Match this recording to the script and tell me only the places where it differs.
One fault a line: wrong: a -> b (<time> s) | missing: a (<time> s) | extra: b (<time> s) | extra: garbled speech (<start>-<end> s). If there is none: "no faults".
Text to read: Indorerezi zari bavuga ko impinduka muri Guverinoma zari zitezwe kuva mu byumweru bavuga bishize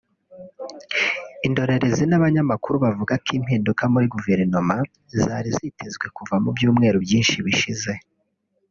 wrong: zari -> n'abanyamakuru (2.1 s)
wrong: bavuga -> byinshi (7.0 s)